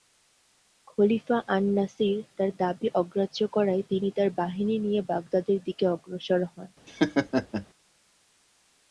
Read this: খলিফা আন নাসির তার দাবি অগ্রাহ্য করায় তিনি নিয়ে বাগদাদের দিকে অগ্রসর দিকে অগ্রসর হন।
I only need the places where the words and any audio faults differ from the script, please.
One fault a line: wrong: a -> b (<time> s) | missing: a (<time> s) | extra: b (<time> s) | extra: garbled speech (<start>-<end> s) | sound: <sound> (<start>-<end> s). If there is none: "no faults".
extra: তার বাহিনী (4.1 s)
missing: দিকে অগ্রসর (6.4 s)
sound: laugh (6.9-7.7 s)